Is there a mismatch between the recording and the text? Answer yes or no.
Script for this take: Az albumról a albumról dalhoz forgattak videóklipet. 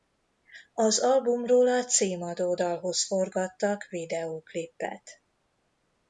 yes